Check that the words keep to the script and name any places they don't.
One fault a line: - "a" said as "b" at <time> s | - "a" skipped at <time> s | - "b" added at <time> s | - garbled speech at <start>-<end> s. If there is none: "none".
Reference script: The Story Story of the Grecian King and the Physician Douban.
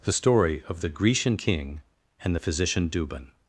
- "Story" skipped at 0.6 s